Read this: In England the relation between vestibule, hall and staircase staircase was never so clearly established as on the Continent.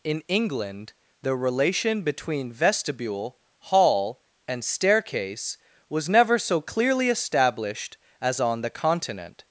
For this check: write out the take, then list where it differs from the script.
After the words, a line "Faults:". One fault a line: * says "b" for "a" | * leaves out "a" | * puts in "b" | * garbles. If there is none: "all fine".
In England the relation between vestibule, hall and staircase was never so clearly established as on the Continent.
Faults:
* leaves out "staircase"